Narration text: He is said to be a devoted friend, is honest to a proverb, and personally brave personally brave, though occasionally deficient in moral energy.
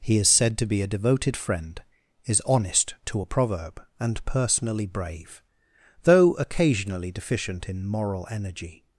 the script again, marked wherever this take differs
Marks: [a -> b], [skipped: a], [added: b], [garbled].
He is said to be a devoted friend, is honest to a proverb, and personally brave [skipped: personally brave,] though occasionally deficient in moral energy.